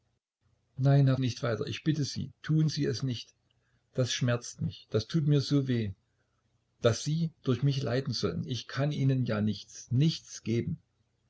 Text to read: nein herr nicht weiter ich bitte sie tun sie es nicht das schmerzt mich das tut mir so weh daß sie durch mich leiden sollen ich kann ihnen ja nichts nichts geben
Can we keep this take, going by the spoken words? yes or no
yes